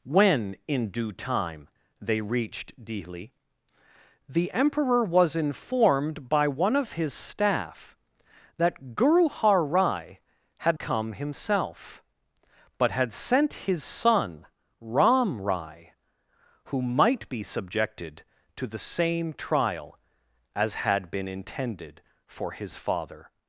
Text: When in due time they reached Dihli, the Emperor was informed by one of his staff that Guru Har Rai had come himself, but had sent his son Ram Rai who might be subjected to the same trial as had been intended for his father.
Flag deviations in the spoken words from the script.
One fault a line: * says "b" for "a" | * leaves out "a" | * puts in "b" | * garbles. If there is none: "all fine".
all fine